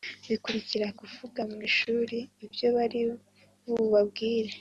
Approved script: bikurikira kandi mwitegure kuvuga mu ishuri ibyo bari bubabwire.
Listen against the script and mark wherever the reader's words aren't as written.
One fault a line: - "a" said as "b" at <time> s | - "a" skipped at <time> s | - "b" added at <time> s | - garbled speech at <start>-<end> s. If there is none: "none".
- "kandi mwitegure" skipped at 0.9 s